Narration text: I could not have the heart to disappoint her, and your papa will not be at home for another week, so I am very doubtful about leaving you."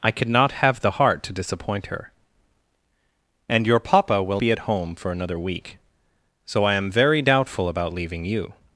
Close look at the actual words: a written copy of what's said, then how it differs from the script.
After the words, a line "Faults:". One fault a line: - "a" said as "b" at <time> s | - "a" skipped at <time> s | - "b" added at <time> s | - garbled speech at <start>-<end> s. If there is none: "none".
I could not have the heart to disappoint her, and your papa will be at home for another week, so I am very doubtful about leaving you."
Faults:
- "not" skipped at 4.4 s